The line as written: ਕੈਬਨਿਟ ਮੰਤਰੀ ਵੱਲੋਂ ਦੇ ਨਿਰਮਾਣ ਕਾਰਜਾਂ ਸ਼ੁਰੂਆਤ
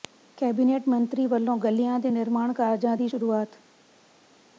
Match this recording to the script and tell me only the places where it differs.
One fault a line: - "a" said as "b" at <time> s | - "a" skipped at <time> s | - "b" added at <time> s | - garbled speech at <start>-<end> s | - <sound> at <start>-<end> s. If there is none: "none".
- "ਗਲੀਆਂ" added at 1.6 s
- "ਦੀ" added at 3.0 s